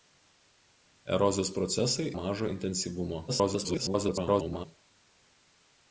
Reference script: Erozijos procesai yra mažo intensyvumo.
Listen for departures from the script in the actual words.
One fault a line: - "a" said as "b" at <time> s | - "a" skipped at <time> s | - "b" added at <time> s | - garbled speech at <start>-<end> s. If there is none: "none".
- "yra" skipped at 2.1 s
- garbled speech at 3.3-4.7 s